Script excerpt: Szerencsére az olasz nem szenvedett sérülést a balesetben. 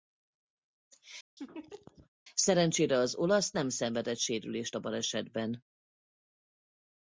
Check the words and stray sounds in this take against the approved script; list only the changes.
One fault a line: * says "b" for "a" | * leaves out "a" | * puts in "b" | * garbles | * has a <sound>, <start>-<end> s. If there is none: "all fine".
* has a laugh, 1.4-2.1 s